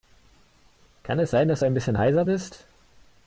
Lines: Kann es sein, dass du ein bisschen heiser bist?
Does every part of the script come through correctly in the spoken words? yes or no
yes